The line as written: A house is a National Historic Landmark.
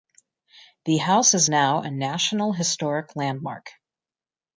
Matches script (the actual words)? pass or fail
fail